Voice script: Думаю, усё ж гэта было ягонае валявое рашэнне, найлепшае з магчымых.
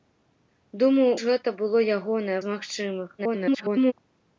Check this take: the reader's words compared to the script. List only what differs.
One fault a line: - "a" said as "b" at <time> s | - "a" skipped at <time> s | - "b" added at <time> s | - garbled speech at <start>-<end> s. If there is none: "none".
- "усё" skipped at 1.1 s
- "валявое рашэнне найлепшае" skipped at 2.4 s
- garbled speech at 3.2-3.9 s